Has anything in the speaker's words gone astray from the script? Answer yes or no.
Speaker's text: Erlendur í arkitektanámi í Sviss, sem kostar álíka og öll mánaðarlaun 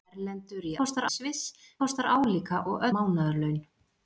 yes